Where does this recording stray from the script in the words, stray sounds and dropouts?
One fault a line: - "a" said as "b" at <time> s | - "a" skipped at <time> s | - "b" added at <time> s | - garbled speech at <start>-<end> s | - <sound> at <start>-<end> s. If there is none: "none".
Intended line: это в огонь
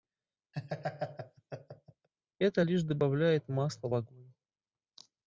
- laugh at 0.5-2.1 s
- "лишь добавляет масла" added at 2.6 s